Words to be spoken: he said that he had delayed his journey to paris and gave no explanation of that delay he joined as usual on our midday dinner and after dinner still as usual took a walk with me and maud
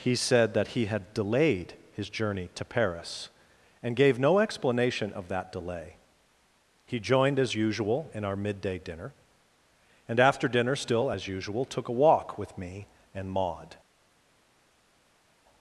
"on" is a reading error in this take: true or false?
true